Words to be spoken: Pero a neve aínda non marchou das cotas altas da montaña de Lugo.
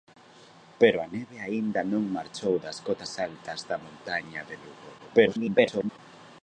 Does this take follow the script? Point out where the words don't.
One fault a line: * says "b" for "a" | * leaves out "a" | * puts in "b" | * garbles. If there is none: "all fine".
* garbles